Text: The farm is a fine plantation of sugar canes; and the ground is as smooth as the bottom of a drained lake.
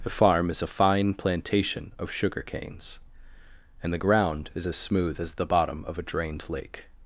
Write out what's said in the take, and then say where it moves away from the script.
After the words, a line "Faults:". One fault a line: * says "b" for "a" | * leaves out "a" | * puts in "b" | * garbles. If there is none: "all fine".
The farm is a fine plantation of sugar canes; and the ground is as smooth as the bottom of a drained lake.
Faults:
all fine